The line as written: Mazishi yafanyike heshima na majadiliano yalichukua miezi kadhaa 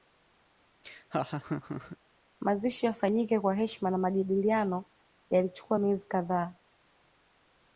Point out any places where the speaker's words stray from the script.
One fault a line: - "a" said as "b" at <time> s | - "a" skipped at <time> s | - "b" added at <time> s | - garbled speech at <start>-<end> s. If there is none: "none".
- "kwa" added at 3.4 s